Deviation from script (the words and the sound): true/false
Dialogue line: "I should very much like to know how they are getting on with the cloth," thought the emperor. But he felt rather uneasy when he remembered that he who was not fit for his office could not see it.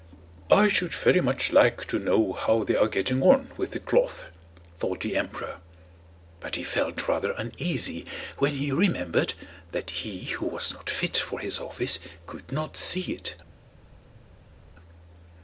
false